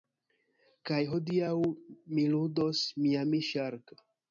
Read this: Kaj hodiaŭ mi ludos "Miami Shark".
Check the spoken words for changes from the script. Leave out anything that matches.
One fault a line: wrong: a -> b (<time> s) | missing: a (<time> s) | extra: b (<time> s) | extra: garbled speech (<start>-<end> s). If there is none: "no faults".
no faults